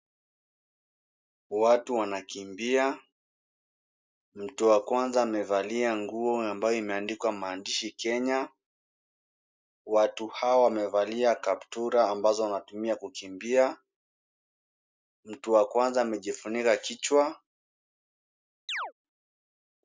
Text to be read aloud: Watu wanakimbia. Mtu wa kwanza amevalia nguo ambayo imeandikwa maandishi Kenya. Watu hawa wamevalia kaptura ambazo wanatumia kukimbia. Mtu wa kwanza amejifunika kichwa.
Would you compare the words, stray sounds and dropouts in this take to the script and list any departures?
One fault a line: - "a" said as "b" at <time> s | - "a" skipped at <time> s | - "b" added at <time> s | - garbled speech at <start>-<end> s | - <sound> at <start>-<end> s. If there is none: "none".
- chirp at 18.7-18.9 s